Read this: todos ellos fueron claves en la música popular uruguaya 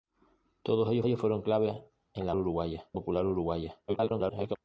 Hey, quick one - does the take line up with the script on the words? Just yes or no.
no